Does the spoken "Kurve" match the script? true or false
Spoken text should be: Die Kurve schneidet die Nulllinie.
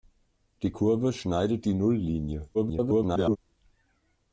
true